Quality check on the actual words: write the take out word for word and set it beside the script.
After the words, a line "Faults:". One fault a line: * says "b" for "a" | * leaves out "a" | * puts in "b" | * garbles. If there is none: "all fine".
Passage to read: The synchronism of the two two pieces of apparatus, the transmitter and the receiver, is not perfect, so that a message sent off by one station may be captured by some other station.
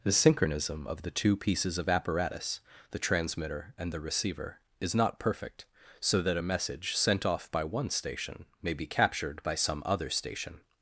The synchronism of the two pieces of apparatus, the transmitter and the receiver, is not perfect, so that a message sent off by one station may be captured by some other station.
Faults:
* leaves out "two"